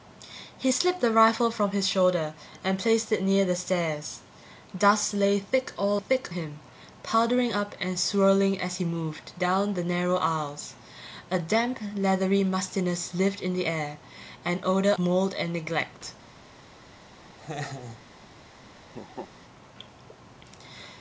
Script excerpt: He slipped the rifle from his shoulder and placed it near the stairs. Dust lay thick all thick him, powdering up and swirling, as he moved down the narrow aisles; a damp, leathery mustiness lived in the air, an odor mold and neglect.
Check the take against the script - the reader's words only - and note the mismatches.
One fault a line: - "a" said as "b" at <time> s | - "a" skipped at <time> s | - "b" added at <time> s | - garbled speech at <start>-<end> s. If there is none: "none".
none